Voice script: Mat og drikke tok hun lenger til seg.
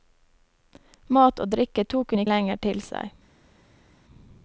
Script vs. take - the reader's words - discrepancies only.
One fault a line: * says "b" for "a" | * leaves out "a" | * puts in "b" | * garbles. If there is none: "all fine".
all fine